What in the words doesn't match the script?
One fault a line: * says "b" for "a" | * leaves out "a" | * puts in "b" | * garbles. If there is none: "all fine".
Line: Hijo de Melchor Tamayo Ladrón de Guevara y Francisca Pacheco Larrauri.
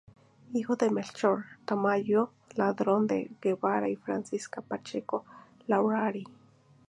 all fine